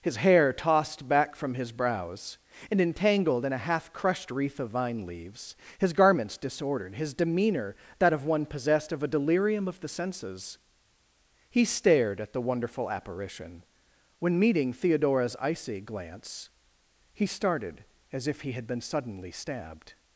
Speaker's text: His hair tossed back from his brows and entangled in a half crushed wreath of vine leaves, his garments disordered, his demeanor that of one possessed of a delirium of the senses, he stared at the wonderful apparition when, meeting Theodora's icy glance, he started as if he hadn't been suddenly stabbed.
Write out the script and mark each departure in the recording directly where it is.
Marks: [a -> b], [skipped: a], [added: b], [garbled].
His hair tossed back from his brows and entangled in a half crushed wreath of vine leaves, his garments disordered, his demeanor that of one possessed of a delirium of the senses, he stared at the wonderful apparition when, meeting Theodora's icy glance, he started as if he [hadn't -> had] been suddenly stabbed.